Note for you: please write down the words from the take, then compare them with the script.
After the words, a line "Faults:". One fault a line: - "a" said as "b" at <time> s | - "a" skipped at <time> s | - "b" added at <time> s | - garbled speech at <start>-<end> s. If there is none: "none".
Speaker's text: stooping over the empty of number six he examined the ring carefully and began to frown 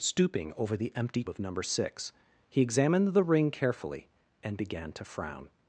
stooping over the empty of number six he examined the ring carefully and began to frown
Faults:
none